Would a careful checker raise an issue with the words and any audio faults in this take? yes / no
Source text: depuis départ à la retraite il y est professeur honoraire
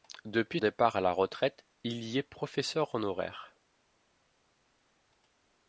no